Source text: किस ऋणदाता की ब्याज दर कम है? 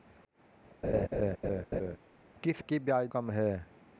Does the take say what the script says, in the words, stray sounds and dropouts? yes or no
no